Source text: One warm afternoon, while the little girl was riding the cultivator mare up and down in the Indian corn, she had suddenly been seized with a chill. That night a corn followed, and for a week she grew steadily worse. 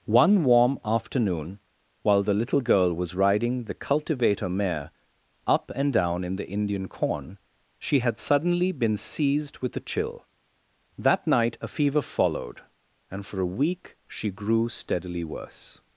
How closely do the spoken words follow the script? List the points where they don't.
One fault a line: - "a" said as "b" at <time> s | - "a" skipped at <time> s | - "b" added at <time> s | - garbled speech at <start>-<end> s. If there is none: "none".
- "corn" said as "fever" at 11.7 s